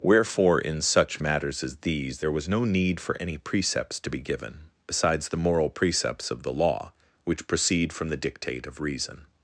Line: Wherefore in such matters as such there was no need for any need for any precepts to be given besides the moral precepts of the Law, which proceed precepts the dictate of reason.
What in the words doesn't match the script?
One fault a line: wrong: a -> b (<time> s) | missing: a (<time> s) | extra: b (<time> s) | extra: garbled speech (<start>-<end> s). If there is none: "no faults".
wrong: such -> these (1.8 s)
missing: need for any (3.4 s)
wrong: precepts -> from (7.9 s)